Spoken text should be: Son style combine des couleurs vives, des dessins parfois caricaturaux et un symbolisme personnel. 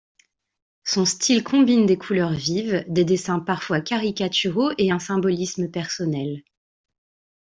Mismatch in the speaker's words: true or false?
false